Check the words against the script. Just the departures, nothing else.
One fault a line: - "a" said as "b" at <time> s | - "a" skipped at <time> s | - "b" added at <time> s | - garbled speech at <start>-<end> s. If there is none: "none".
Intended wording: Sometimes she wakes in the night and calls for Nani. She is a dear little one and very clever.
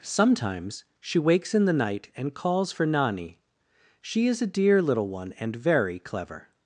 none